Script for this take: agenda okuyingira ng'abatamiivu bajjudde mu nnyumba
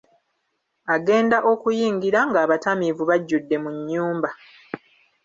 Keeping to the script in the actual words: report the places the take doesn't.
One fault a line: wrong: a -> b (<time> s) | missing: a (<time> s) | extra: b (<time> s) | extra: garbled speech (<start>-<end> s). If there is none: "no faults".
no faults